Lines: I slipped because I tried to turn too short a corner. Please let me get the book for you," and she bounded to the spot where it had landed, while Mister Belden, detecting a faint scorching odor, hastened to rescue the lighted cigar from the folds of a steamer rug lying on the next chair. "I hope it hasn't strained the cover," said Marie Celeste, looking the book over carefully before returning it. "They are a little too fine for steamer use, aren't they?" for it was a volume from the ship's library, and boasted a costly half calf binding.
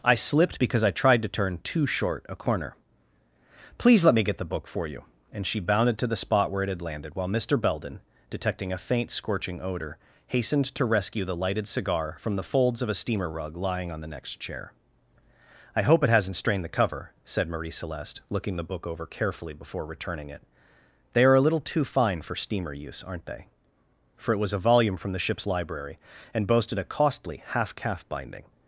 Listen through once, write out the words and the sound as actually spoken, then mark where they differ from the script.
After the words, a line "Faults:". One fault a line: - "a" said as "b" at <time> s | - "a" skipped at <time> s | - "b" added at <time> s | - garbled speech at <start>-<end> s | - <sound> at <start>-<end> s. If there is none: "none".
I slipped because I tried to turn too short a corner. Please let me get the book for you," and she bounded to the spot where it had landed, while Mister Belden, detecting a faint scorching odor, hastened to rescue the lighted cigar from the folds of a steamer rug lying on the next chair. "I hope it hasn't strained the cover," said Marie Celeste, looking the book over carefully before returning it. "They are a little too fine for steamer use, aren't they?" for it was a volume from the ship's library, and boasted a costly half calf binding.
Faults:
none